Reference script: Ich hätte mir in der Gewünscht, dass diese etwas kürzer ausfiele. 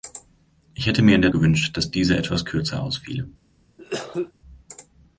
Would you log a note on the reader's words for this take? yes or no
no